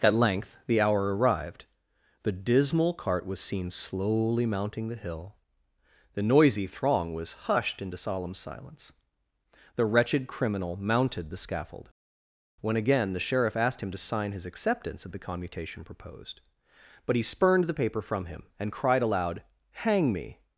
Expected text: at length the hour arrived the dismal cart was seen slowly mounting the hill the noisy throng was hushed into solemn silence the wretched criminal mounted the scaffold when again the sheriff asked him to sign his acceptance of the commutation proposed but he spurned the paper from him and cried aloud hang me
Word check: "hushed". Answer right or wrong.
right